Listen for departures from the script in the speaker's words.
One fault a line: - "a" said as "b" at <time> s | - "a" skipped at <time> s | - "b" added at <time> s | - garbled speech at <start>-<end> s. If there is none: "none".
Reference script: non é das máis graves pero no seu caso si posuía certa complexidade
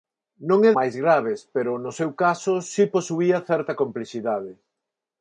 - "das" skipped at 0.7 s